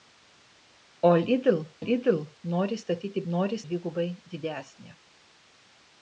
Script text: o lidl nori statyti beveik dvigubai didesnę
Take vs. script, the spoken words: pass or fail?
fail